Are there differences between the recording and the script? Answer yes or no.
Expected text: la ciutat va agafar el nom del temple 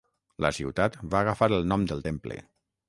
no